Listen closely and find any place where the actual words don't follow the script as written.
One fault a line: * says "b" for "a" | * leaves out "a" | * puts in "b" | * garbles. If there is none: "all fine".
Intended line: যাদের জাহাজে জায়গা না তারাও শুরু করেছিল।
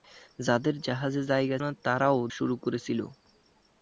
all fine